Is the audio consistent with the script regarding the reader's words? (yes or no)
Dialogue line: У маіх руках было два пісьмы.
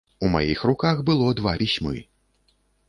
yes